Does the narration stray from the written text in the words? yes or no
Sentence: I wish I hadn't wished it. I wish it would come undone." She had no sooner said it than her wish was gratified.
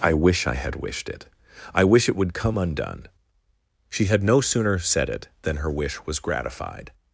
yes